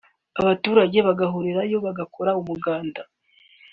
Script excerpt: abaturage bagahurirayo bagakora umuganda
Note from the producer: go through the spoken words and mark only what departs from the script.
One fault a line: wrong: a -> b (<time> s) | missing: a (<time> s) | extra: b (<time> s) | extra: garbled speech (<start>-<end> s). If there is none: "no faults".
no faults